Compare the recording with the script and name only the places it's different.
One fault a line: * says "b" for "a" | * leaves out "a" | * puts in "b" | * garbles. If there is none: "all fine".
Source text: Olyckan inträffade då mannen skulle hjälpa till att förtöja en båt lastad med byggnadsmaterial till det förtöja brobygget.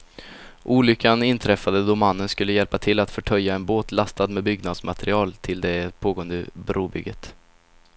* says "pågående" for "förtöja"